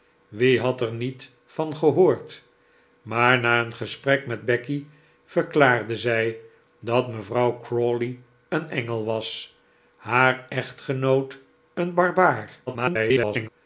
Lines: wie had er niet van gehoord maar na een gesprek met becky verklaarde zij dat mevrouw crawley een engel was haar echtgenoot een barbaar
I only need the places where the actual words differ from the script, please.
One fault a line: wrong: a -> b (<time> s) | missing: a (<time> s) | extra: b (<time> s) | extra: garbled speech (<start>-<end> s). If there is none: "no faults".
extra: garbled speech (12.7-13.5 s)